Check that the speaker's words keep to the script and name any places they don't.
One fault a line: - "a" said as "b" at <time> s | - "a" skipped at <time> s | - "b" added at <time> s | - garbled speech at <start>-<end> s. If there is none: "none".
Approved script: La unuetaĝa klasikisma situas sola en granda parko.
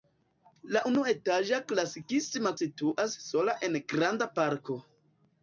none